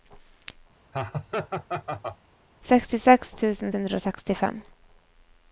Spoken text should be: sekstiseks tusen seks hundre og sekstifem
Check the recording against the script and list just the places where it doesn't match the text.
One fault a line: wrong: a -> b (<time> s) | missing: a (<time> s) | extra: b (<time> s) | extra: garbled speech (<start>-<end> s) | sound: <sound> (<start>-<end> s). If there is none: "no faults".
sound: laugh (0.9-2.2 s)
missing: seks (3.7 s)